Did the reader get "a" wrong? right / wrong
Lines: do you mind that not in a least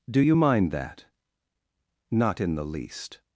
wrong